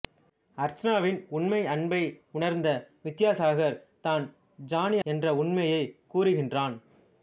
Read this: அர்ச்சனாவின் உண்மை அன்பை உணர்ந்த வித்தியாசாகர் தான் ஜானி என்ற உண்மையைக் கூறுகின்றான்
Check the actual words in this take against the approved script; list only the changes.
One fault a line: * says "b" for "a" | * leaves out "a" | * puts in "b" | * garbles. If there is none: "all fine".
all fine